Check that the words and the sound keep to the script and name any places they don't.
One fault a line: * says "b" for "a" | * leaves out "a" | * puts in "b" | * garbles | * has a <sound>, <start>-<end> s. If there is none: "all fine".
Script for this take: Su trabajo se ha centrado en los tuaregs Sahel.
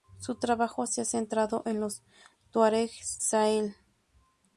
all fine